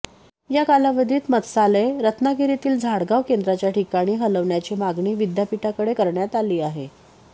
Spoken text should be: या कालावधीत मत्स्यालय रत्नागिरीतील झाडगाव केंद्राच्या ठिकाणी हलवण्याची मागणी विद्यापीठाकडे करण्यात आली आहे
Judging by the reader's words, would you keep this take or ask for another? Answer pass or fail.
pass